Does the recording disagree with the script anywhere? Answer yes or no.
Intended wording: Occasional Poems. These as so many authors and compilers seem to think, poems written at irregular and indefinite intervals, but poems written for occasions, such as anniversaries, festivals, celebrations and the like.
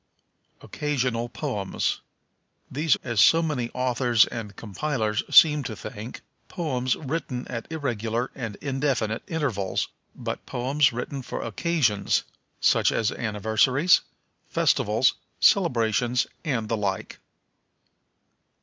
no